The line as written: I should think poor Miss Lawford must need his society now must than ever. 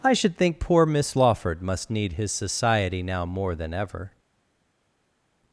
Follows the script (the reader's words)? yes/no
no